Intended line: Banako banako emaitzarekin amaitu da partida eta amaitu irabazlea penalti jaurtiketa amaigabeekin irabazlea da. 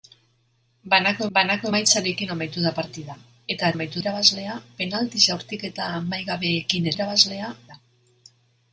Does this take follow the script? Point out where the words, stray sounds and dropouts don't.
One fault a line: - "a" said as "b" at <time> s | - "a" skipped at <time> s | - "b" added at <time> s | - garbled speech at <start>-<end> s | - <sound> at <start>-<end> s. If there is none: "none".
none